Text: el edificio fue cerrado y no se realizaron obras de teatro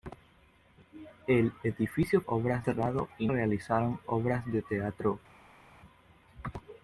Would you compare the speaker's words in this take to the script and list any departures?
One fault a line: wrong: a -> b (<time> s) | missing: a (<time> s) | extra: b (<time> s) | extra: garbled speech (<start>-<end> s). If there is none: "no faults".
wrong: fue -> obras (2.3 s)
missing: no se (3.3 s)